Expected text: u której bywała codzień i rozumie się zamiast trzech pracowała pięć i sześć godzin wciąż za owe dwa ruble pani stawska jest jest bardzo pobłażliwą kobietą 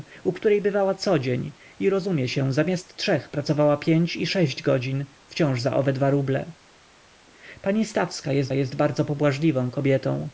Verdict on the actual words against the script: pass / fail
pass